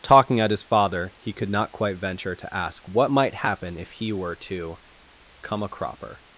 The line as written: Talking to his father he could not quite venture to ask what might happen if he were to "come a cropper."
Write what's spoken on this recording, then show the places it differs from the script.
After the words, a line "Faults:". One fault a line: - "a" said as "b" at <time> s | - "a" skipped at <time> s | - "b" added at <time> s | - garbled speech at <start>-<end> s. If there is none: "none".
Talking at his father he could not quite venture to ask what might happen if he were to "come a cropper."
Faults:
- "to" said as "at" at 0.4 s